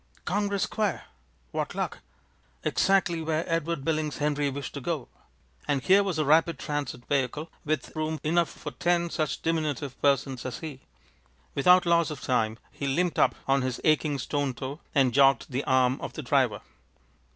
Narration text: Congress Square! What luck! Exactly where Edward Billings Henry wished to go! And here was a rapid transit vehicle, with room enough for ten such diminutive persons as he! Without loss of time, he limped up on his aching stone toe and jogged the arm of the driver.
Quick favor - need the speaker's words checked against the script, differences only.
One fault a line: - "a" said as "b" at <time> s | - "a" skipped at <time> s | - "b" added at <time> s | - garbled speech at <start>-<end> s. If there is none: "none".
none